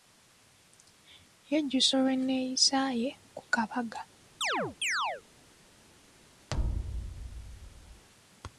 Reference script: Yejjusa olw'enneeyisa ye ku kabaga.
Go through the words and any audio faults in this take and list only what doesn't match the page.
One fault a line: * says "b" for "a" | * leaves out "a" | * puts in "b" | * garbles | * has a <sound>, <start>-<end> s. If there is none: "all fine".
* has a chirp, 4.4-5.2 s
* has a thud, 6.5-8.0 s